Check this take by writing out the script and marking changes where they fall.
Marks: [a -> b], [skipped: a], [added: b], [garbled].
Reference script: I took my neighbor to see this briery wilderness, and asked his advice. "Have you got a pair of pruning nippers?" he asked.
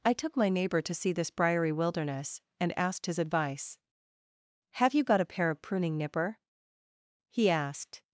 I took my neighbor to see this briery wilderness, and asked his advice. "Have you got a pair of pruning [nippers?" -> nipper] he asked.